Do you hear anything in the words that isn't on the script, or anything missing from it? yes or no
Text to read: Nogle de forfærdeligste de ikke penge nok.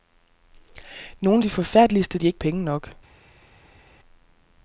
no